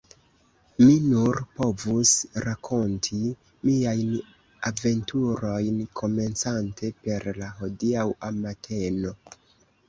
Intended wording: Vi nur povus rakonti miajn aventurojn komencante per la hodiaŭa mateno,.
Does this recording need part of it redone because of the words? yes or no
yes